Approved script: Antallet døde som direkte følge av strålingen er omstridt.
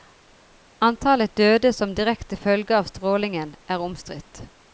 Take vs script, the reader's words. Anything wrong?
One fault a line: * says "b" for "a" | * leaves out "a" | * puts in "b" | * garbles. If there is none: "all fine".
all fine